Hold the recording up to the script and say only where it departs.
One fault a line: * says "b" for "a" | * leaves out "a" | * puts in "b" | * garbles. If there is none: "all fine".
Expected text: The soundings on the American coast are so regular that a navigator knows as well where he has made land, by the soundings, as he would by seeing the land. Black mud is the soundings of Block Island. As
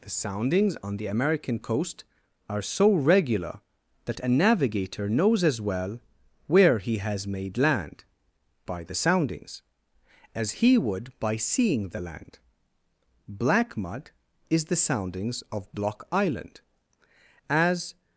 all fine